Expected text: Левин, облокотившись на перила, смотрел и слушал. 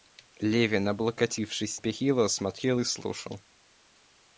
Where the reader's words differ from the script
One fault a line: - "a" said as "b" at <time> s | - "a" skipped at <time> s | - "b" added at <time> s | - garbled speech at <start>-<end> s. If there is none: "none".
- "на" skipped at 1.8 s